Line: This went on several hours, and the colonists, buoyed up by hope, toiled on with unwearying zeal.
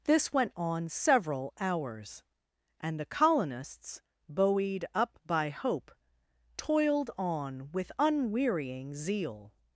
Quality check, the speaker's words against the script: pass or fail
pass